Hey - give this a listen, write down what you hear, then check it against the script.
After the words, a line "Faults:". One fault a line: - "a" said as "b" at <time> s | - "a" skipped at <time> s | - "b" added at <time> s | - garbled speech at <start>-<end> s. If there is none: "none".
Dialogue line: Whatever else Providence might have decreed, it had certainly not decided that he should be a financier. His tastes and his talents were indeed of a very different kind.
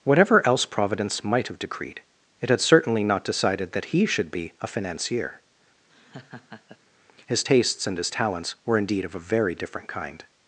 Whatever else Providence might have decreed, it had certainly not decided that he should be a financier. His tastes and his talents were indeed of a very different kind.
Faults:
none